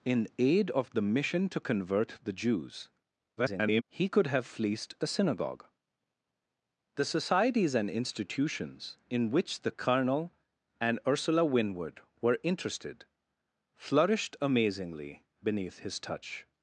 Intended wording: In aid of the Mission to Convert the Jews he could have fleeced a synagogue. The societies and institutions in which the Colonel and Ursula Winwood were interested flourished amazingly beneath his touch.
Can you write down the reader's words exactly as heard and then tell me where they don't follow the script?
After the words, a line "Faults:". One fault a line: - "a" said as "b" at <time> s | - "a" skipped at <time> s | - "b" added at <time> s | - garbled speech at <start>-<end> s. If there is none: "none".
In aid of the Mission to Convert the Jews [garbled] he could have fleeced a synagogue. The societies and institutions in which the Colonel and Ursula Winwood were interested flourished amazingly beneath his touch.
Faults:
- garbled speech at 3.4-3.8 s